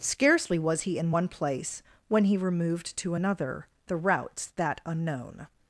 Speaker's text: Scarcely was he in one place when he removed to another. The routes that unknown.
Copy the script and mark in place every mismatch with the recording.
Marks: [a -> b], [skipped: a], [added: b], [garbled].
Scarcely was he in one place when he removed to another. The routes that unknown.